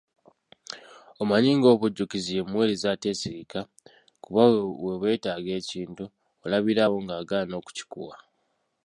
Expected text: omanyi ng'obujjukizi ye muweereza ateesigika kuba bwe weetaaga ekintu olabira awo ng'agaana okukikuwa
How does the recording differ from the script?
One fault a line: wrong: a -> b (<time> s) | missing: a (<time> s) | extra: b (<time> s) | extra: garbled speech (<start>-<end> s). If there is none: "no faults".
no faults